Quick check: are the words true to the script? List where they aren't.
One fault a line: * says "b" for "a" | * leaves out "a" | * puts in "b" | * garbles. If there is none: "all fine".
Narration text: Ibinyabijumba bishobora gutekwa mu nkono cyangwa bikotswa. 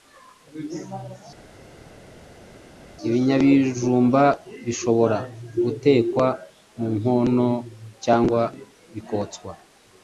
all fine